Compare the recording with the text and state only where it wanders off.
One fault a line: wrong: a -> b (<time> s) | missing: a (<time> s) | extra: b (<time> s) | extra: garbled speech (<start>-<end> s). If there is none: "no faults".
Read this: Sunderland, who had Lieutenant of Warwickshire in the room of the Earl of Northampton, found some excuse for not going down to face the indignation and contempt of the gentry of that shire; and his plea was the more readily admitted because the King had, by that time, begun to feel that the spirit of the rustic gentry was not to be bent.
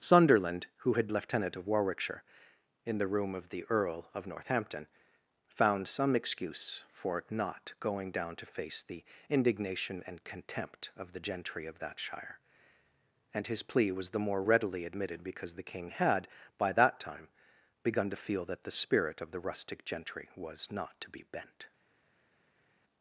no faults